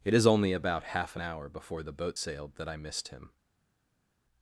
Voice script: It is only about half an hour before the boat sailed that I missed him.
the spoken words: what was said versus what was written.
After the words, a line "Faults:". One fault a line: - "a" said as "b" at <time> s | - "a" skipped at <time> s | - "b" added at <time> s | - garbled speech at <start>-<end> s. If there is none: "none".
It is only about half an hour before the boat sailed that I missed him.
Faults:
none